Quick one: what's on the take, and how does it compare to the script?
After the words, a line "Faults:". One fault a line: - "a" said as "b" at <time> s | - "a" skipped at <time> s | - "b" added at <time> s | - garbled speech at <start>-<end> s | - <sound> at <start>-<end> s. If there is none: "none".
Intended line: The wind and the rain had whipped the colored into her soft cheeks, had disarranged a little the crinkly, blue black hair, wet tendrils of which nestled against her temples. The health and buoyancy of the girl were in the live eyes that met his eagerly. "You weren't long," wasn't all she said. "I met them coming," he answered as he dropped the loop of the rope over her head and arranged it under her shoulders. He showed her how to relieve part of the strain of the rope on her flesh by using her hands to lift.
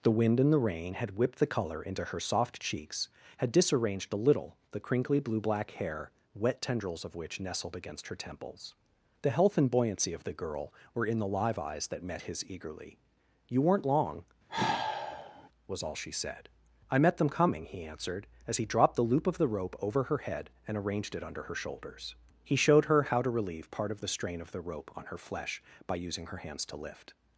The wind and the rain had whipped the color into her soft cheeks, had disarranged a little the crinkly, blue black hair, wet tendrils of which nestled against her temples. The health and buoyancy of the girl were in the live eyes that met his eagerly. "You weren't long," was all she said. "I met them coming," he answered as he dropped the loop of the rope over her head and arranged it under her shoulders. He showed her how to relieve part of the strain of the rope on her flesh by using her hands to lift.
Faults:
- "colored" said as "color" at 1.5 s
- sigh at 14.5-15.5 s
- "wasn't" said as "was" at 15.7 s